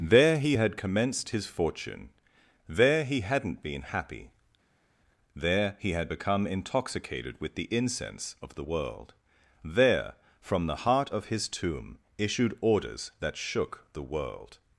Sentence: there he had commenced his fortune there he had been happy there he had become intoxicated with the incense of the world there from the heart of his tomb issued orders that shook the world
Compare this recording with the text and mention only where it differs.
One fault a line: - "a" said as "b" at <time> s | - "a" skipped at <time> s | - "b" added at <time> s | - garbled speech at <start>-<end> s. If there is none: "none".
- "had" said as "hadn't" at 3.2 s